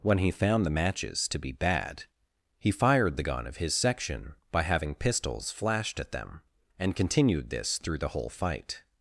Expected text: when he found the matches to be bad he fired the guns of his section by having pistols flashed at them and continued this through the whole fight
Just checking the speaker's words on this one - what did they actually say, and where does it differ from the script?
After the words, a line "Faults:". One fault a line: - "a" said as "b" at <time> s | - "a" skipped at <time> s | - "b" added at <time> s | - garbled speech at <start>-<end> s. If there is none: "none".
when he found the matches to be bad he fired the gun of his section by having pistols flashed at them and continued this through the whole fight
Faults:
- "guns" said as "gun" at 3.2 s